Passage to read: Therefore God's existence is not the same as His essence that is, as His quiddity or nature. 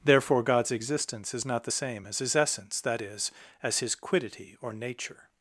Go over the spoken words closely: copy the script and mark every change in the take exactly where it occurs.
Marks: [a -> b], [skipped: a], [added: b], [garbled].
Therefore God's existence is not the same as His essence that is, as His quiddity or nature.